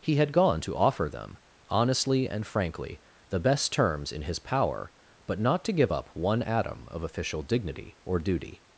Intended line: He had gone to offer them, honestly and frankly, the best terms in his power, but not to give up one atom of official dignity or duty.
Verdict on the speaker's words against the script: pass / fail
pass